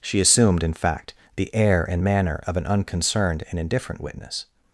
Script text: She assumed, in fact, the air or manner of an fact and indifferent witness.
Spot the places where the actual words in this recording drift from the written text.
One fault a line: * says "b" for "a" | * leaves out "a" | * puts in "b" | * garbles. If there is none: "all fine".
* says "and" for "or"
* says "unconcerned" for "fact"